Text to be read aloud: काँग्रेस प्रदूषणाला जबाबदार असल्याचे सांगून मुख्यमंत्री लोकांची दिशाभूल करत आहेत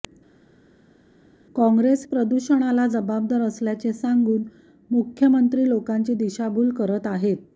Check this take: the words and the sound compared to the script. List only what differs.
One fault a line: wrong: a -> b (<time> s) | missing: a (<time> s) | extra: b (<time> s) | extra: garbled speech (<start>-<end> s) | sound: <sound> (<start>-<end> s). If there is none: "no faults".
no faults